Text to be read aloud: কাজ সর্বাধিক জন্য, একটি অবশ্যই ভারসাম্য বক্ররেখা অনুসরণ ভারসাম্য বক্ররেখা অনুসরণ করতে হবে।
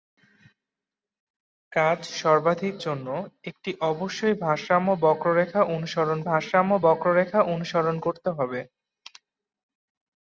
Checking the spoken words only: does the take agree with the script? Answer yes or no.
yes